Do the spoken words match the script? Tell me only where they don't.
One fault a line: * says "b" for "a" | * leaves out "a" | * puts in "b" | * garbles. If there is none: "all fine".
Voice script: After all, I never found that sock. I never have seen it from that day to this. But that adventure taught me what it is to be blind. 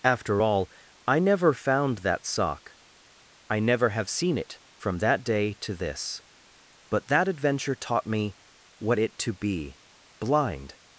* leaves out "is"